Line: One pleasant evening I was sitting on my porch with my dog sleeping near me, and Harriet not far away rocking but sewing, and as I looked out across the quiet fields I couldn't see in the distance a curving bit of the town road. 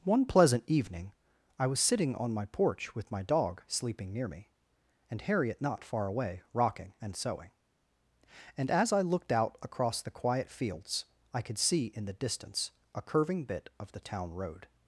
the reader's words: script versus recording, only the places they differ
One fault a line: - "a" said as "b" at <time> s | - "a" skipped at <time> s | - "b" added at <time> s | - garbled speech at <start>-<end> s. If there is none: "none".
- "but" said as "and" at 7.0 s
- "couldn't" said as "could" at 11.4 s